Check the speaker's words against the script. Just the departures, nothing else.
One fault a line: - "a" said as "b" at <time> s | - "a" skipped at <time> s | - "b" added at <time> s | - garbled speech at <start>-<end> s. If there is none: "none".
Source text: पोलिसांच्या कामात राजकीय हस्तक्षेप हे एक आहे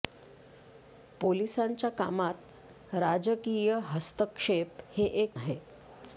none